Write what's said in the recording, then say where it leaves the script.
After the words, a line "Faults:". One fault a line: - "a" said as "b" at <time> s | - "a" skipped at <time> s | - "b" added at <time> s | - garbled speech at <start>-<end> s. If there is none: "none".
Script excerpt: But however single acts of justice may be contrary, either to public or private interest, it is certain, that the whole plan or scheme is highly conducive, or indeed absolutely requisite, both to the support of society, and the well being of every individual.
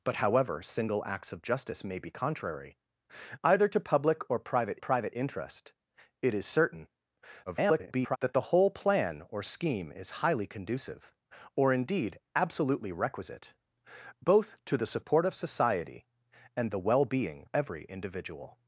But however single acts of justice may be contrary, either to public or private private interest, it is certain, [garbled] that the whole plan or scheme is highly conducive, or indeed absolutely requisite, both to the support of society, and the well being every individual.
Faults:
- "private" added at 4.8 s
- garbled speech at 7.5-8.2 s
- "of" skipped at 17.5 s